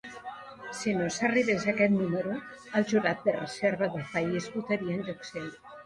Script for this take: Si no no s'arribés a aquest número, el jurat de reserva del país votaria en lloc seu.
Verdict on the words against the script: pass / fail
fail